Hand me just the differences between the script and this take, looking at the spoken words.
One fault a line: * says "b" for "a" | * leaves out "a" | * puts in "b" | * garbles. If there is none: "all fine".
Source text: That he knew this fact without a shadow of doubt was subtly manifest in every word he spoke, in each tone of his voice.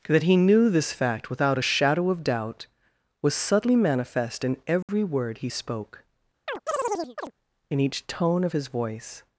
all fine